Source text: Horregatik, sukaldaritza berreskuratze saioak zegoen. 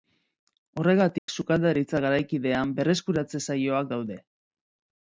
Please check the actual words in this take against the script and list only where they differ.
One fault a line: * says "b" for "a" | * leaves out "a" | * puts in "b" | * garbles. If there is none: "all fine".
* puts in "garaikidean"
* says "daude" for "zegoen"